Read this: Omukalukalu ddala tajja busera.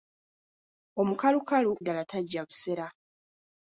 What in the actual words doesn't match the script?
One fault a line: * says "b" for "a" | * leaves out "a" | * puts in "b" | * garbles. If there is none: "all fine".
all fine